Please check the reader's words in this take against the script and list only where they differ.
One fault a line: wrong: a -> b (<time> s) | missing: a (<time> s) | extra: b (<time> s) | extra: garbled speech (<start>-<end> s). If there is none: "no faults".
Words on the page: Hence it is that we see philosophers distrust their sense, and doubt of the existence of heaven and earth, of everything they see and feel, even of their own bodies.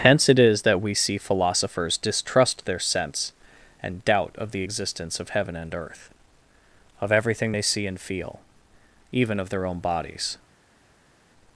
no faults